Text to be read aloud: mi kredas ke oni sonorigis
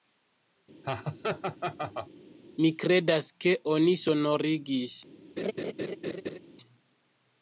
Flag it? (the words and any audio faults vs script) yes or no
yes